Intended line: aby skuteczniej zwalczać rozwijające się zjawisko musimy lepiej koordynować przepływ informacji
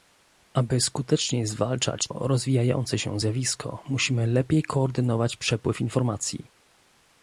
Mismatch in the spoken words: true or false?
false